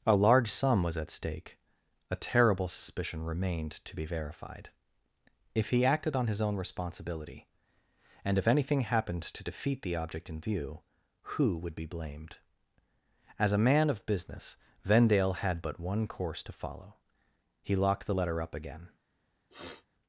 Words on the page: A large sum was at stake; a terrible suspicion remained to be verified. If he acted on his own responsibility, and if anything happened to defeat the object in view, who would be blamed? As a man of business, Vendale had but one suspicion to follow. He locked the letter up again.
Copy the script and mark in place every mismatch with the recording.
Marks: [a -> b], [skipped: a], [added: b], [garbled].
A large sum was at stake; a terrible suspicion remained to be verified. If he acted on his own responsibility, and if anything happened to defeat the object in view, who would be blamed? As a man of business, Vendale had but one [suspicion -> course] to follow. He locked the letter up again.